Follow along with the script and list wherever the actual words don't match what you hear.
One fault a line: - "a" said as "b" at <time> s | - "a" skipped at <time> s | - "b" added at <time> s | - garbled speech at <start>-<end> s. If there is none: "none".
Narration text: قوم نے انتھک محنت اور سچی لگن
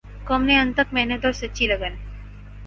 none